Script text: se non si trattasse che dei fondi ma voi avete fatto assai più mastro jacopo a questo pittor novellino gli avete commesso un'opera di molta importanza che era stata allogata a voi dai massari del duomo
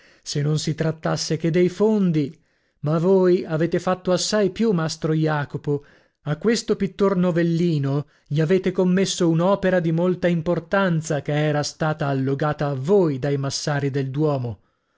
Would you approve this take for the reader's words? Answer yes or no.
yes